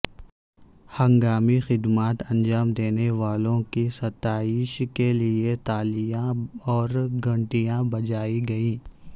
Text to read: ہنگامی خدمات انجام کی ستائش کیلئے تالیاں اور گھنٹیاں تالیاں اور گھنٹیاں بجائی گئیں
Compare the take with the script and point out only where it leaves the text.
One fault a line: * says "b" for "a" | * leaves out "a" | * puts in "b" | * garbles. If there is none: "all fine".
* puts in "دینے والوں"
* leaves out "تالیاں اور گھنٹیاں"